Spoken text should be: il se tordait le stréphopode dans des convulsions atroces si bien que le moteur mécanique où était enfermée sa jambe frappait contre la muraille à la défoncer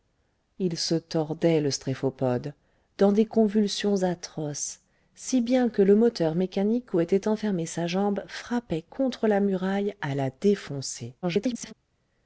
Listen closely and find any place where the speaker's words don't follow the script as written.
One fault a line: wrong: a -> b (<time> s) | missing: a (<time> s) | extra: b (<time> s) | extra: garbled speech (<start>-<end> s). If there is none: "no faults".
extra: garbled speech (11.2-11.7 s)